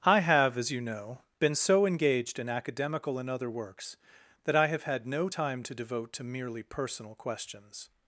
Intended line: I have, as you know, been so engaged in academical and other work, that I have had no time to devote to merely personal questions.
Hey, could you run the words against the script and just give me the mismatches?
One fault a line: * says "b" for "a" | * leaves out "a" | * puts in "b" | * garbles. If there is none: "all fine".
* says "works" for "work"